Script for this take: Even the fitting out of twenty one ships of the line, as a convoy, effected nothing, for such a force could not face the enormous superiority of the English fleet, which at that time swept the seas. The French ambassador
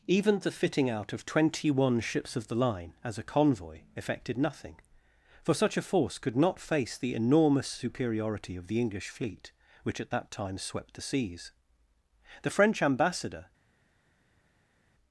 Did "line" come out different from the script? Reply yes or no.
no